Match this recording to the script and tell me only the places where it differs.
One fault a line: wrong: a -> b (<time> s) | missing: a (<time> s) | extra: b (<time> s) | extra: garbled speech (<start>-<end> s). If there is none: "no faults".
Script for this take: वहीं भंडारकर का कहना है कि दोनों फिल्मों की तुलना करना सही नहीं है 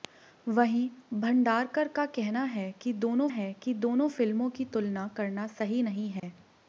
extra: है कि दोनों (3.3 s)